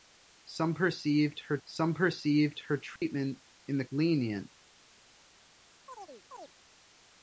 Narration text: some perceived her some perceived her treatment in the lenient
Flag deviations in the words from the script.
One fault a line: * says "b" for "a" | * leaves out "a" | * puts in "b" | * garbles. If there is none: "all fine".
all fine